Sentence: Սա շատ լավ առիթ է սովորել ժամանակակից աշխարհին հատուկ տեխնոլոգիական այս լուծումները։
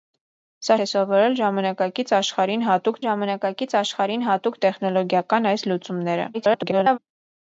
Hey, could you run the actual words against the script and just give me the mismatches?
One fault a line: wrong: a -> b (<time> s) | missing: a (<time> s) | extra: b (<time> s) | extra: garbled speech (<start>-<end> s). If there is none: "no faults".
wrong: շատ լավ առիթ է սովորել -> է սովորել ժամանակակից աշխարհին հատուկ (0.8 s)
extra: garbled speech (6.3-7.0 s)